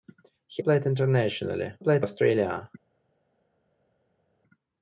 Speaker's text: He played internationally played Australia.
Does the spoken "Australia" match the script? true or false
true